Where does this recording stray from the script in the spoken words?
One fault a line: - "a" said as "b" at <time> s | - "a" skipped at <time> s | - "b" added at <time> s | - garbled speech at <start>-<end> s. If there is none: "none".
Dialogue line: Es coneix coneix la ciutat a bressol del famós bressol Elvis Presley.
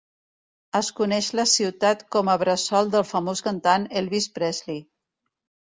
- "coneix" skipped at 1.3 s
- "com" added at 2.2 s
- "bressol" said as "cantant" at 3.5 s